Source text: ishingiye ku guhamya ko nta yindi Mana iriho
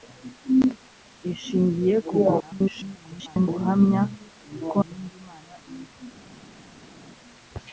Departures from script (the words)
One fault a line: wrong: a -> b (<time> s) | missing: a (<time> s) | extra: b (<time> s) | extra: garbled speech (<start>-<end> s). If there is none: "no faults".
extra: garbled speech (2.4-3.5 s)
missing: nta (4.8 s)